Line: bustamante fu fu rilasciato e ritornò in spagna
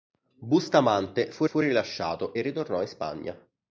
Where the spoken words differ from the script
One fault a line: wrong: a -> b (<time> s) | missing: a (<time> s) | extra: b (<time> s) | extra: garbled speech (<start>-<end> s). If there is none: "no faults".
no faults